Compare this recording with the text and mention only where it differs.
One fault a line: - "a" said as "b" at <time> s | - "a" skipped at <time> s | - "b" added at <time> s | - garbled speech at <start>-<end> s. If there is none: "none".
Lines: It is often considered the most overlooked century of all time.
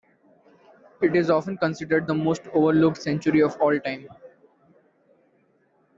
none